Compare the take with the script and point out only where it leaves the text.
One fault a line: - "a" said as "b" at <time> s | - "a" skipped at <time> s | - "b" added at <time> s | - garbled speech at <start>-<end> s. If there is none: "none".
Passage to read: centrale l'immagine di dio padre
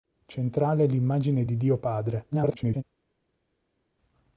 - garbled speech at 2.3-2.8 s